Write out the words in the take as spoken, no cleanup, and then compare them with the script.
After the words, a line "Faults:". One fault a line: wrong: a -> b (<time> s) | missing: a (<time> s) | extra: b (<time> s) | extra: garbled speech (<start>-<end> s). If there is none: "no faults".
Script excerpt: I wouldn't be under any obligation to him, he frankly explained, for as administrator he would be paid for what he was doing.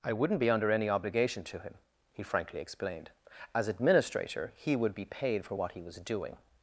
I wouldn't be under any obligation to him, he frankly explained, as administrator he would be paid for what he was doing.
Faults:
missing: for (3.1 s)